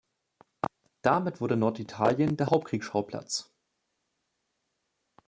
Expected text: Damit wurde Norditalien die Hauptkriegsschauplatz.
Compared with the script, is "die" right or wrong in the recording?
wrong